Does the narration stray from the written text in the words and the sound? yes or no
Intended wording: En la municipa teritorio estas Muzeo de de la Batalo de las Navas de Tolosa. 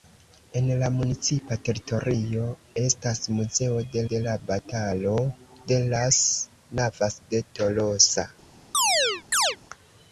yes